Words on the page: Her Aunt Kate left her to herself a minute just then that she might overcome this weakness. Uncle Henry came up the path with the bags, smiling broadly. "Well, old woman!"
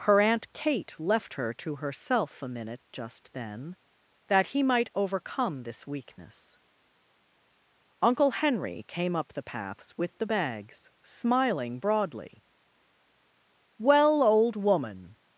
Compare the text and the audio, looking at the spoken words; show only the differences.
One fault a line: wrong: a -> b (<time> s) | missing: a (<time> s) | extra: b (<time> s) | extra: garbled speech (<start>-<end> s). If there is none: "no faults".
wrong: she -> he (4.5 s)
wrong: path -> paths (9.4 s)